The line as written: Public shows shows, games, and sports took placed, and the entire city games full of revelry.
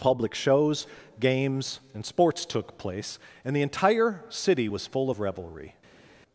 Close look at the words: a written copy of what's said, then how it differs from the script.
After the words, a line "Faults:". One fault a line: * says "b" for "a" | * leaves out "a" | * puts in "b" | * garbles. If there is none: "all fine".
Public shows, games, and sports took place, and the entire city was full of revelry.
Faults:
* leaves out "shows"
* says "place" for "placed"
* says "was" for "games"